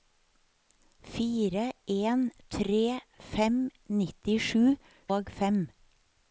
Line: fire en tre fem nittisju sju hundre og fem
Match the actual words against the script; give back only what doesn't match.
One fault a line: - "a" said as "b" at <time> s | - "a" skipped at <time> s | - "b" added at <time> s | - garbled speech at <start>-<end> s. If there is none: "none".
- "sju hundre" skipped at 4.6 s